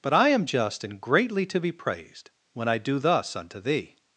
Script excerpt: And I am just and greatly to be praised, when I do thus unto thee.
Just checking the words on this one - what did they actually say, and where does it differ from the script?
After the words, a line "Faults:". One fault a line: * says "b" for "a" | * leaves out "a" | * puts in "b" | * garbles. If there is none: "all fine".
But I am just and greatly to be praised, when I do thus unto thee.
Faults:
* says "But" for "And"